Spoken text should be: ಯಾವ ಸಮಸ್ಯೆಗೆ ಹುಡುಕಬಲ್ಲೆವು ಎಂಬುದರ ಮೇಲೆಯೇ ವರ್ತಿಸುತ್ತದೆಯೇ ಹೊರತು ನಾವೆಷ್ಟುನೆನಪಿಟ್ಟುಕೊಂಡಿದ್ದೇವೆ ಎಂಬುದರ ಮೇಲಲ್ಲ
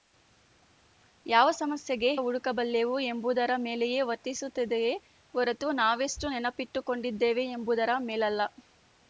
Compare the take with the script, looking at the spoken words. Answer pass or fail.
pass